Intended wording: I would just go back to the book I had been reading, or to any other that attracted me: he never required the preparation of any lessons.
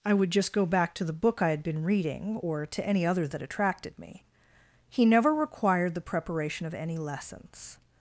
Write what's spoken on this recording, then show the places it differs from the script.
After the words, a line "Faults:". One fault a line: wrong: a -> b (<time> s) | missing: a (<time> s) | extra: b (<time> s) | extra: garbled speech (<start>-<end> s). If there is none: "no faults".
I would just go back to the book I had been reading, or to any other that attracted me: he never required the preparation of any lessons.
Faults:
no faults